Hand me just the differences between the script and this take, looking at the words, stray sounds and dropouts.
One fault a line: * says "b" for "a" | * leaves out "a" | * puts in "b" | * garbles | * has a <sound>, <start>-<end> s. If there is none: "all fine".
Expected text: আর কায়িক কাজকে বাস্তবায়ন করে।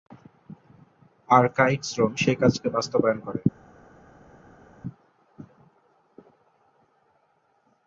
* puts in "শ্রম সেই"